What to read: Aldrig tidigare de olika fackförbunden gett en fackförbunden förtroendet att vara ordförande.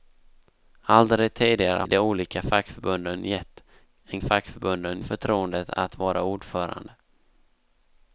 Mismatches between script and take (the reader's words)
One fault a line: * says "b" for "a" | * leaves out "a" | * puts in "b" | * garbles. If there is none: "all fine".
all fine